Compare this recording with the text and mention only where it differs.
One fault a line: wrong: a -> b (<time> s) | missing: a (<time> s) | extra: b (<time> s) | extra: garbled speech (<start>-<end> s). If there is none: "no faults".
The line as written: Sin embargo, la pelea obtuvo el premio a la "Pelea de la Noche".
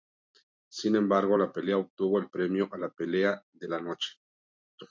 no faults